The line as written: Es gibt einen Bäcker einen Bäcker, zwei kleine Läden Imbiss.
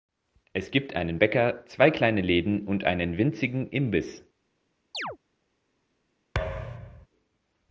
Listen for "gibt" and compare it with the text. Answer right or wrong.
right